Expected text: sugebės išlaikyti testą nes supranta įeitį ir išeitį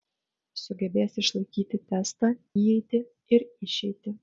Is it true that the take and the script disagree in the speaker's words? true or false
true